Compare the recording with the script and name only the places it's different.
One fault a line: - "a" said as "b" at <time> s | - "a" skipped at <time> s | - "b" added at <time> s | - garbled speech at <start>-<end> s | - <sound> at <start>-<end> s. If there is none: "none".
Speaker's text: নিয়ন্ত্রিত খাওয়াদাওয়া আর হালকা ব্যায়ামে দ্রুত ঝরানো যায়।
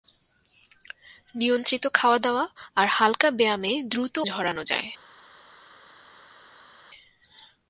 none